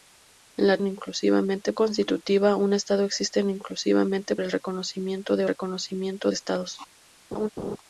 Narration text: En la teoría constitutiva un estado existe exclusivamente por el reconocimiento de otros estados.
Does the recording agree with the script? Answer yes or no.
no